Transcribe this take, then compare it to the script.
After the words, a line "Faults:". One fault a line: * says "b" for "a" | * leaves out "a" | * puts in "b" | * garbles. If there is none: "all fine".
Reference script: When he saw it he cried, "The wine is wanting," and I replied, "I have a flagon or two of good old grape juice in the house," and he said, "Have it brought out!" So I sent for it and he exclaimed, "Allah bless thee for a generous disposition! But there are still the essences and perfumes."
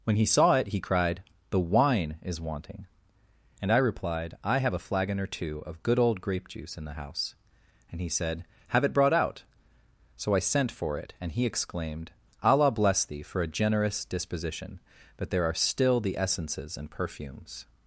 When he saw it he cried, "The wine is wanting," and I replied, "I have a flagon or two of good old grape juice in the house," and he said, "Have it brought out!" So I sent for it and he exclaimed, "Allah bless thee for a generous disposition! But there are still the essences and perfumes."
Faults:
all fine